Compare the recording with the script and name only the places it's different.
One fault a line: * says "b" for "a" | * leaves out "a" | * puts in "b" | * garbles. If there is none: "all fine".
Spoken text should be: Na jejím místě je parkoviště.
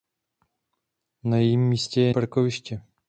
all fine